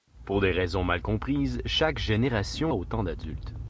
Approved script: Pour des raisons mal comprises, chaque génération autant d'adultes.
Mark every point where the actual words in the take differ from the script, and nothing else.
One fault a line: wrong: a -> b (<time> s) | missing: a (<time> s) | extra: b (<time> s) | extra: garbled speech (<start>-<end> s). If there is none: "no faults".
no faults